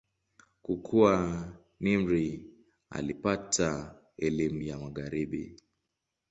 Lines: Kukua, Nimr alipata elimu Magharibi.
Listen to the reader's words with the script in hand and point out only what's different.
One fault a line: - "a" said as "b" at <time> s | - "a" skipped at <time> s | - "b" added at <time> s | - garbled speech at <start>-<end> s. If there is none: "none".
- "ya" added at 4.6 s